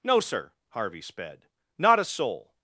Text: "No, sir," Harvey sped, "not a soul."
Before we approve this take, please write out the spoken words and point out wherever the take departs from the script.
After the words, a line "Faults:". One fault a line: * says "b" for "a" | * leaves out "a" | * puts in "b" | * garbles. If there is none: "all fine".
"No, sir," Harvey sped, "not a soul."
Faults:
all fine